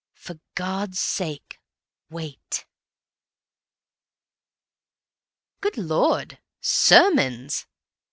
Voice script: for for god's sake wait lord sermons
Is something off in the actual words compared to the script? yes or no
yes